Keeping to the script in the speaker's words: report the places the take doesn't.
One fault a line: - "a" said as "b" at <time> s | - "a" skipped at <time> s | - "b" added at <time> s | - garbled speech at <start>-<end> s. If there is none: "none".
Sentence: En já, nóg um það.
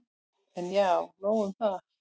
none